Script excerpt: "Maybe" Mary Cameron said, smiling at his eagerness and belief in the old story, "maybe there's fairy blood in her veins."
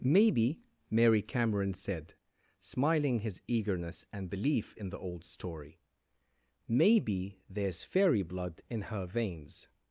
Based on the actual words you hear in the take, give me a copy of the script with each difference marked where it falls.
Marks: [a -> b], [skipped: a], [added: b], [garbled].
"Maybe" Mary Cameron said, smiling [skipped: at] his eagerness and belief in the old story, "maybe there's fairy blood in her veins."